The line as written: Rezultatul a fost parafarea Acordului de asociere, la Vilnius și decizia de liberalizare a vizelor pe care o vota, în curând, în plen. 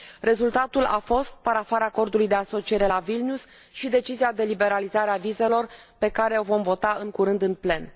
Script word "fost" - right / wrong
right